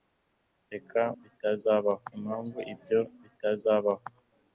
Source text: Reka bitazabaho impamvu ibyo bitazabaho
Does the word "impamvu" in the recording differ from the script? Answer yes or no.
no